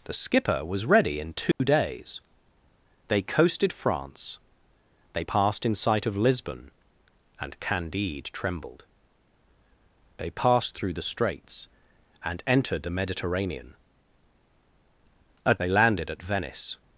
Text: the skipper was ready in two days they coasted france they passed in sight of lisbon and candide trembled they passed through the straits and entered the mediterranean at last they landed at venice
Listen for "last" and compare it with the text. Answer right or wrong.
wrong